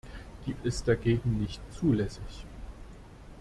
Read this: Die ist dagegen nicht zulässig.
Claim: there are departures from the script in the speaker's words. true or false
false